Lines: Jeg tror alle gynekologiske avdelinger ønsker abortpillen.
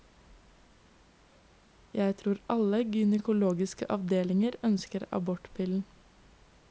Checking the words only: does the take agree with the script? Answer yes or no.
yes